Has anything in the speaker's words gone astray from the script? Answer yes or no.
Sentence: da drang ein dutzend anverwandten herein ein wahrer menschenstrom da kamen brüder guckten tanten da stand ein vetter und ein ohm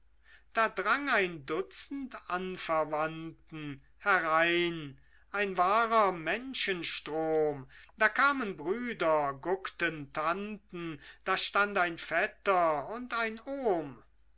no